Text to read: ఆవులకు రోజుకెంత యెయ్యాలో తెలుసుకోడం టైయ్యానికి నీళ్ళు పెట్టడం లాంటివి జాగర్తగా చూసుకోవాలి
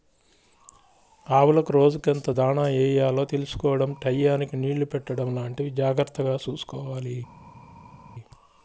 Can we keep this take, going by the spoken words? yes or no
no